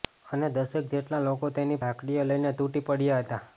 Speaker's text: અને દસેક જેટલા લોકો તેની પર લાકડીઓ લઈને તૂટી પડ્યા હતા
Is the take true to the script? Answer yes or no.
no